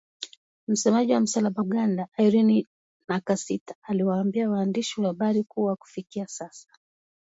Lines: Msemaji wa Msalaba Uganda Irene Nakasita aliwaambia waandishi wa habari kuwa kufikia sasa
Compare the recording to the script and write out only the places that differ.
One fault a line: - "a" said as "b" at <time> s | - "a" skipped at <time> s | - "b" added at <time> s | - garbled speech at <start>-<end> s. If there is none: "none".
none